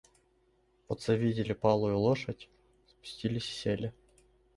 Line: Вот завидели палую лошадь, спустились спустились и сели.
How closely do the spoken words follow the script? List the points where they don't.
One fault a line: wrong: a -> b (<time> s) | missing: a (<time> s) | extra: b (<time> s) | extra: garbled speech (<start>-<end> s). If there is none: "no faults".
missing: спустились (3.5 s)